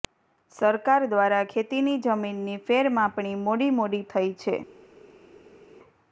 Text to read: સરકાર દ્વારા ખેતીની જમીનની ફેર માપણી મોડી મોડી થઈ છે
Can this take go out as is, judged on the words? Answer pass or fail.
pass